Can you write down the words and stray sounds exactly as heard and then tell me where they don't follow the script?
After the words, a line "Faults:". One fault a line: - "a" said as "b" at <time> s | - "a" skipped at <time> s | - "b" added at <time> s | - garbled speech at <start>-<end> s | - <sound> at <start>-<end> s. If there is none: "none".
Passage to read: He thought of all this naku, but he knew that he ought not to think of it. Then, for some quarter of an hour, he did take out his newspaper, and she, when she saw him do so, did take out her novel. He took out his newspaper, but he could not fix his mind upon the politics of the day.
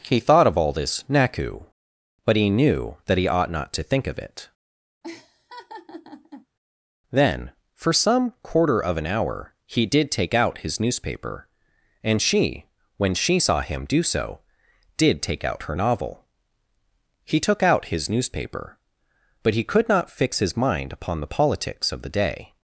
He thought of all this naku, but he knew that he ought not to think of it. Then, for some quarter of an hour, he did take out his newspaper, and she, when she saw him do so, did take out her novel. He took out his newspaper, but he could not fix his mind upon the politics of the day.
Faults:
- laugh at 5.0-6.5 s